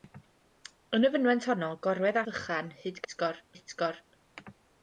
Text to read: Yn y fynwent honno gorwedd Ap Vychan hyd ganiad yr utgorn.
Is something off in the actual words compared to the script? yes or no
yes